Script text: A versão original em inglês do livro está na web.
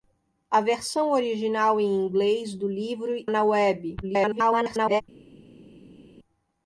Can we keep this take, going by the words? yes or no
no